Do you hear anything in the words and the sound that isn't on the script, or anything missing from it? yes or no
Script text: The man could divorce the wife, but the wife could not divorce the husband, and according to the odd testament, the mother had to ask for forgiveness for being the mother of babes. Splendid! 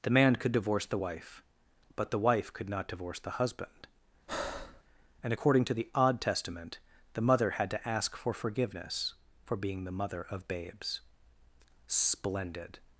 yes